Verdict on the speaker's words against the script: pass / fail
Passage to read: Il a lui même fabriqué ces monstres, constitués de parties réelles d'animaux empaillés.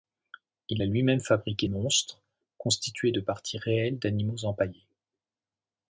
fail